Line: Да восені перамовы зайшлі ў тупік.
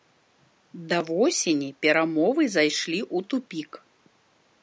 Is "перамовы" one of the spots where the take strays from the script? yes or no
no